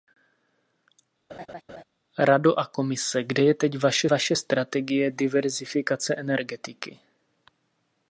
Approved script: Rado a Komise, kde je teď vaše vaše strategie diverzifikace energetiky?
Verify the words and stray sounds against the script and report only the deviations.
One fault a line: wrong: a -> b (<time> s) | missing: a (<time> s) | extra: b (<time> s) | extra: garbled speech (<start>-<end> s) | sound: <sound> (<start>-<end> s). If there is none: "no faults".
sound: laugh (1.3-1.8 s)